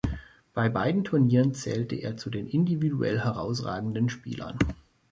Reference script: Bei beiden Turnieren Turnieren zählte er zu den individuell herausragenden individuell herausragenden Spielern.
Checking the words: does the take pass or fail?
fail